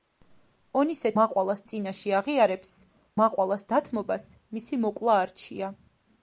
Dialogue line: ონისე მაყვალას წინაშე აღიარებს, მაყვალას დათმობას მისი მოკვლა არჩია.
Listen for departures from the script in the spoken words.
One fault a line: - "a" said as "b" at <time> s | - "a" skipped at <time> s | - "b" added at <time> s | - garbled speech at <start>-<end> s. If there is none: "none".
none